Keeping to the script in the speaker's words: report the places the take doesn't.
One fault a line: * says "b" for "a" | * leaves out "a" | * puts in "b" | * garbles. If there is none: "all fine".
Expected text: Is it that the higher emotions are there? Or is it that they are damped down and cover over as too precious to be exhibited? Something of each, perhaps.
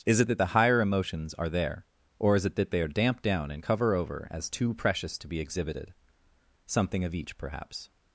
all fine